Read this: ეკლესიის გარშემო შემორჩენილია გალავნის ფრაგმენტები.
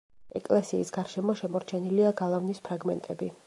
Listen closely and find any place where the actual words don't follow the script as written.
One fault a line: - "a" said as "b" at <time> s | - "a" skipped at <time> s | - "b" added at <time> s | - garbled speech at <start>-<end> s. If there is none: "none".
none